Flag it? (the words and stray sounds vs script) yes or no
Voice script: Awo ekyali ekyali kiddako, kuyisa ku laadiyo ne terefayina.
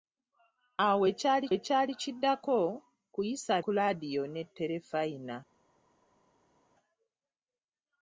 no